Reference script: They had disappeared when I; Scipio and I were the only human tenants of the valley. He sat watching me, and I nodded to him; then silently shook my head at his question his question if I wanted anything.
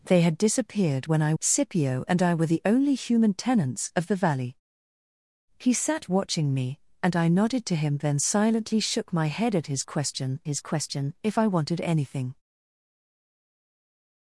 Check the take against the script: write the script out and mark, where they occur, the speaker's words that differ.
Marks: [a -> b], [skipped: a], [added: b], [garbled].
They had disappeared when I; Scipio and I were the only human tenants of the valley. He sat watching me, and I nodded to him; then silently shook my head at his question his question if I wanted anything.